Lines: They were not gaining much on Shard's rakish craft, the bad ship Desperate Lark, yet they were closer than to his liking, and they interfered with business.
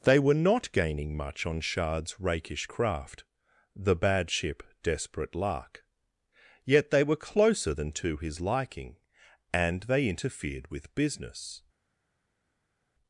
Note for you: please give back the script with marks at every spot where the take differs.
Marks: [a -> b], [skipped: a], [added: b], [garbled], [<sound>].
They were not gaining much on Shard's rakish craft, the bad ship Desperate Lark, yet they were closer than to his liking, and they interfered with business.